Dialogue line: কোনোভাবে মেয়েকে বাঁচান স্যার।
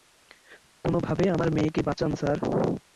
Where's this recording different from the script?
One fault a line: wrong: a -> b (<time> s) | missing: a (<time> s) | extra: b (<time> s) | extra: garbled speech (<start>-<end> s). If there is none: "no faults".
extra: আমার (1.4 s)